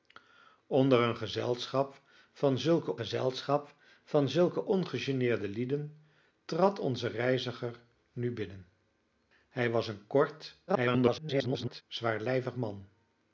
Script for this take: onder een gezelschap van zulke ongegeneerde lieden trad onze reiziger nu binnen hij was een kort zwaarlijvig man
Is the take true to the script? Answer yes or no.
no